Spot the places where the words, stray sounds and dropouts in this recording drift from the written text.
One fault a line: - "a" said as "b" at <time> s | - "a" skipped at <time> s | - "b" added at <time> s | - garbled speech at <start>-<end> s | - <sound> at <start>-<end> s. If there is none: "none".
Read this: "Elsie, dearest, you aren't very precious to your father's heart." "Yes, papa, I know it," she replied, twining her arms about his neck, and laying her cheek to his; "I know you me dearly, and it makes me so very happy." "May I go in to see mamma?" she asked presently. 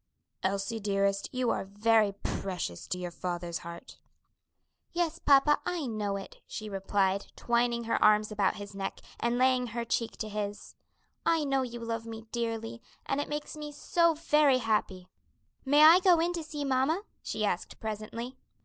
- "aren't" said as "are" at 1.5 s
- "love" added at 11.8 s